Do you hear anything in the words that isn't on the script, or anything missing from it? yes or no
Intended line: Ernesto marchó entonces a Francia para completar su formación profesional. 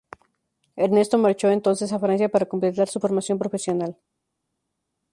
no